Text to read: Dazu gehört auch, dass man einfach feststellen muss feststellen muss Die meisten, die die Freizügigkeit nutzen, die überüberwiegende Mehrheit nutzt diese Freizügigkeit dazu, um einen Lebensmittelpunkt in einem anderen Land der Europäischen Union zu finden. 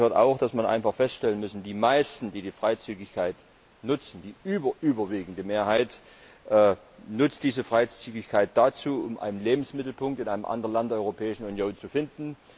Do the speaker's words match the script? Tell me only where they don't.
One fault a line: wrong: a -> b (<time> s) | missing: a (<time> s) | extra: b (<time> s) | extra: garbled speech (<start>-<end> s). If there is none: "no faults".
missing: feststellen muss (1.6 s)